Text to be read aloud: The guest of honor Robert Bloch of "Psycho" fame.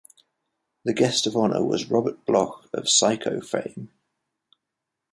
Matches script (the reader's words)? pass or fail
fail